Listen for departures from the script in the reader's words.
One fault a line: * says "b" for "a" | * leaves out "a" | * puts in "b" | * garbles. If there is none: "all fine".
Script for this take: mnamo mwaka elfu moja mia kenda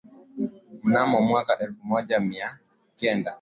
all fine